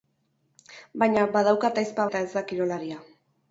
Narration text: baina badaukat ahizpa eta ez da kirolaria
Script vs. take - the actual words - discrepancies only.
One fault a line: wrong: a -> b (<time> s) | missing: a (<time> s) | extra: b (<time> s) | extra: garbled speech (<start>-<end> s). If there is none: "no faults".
no faults